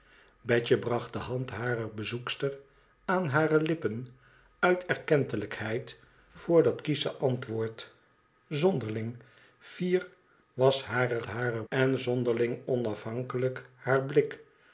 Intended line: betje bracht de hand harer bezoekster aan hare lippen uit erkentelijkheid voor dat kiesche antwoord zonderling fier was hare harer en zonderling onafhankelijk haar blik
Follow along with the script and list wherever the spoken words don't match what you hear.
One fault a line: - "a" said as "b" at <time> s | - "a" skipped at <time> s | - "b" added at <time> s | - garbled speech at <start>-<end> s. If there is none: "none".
none